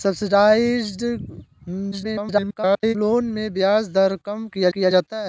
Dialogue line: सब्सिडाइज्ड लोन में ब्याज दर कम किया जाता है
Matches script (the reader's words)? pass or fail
fail